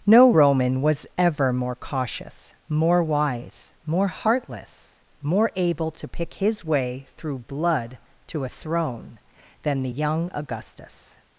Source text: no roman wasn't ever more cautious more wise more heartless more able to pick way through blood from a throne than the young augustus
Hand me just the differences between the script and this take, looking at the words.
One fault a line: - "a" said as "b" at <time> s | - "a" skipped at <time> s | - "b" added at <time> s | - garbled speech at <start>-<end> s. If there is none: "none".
- "wasn't" said as "was" at 0.8 s
- "his" added at 6.3 s
- "from" said as "to" at 8.3 s